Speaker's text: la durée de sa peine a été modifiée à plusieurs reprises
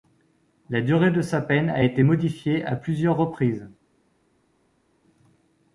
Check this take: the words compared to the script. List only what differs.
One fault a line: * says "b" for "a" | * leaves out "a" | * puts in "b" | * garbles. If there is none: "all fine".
all fine